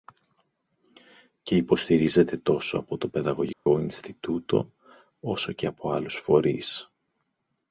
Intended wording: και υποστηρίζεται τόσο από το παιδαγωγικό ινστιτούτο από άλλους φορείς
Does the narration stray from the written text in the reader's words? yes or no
yes